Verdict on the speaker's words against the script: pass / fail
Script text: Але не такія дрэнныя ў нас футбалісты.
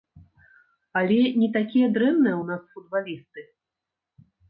pass